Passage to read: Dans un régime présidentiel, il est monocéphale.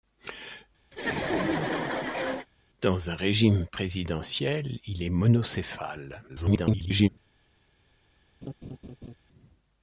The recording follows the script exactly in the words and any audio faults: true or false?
false